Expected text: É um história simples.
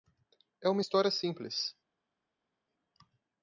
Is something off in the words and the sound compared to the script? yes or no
yes